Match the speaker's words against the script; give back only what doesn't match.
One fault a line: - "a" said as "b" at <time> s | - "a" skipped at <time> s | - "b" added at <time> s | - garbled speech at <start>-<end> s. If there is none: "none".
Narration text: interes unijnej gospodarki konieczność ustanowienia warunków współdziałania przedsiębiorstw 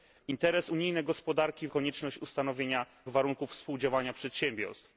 none